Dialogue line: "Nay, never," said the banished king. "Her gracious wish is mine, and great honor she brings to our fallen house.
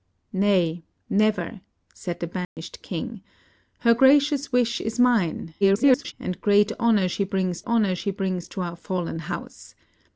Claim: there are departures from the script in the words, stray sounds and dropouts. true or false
true